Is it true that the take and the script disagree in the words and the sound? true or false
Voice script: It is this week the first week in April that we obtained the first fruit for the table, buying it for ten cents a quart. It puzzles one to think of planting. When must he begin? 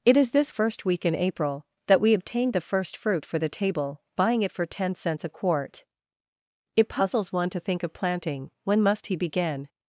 true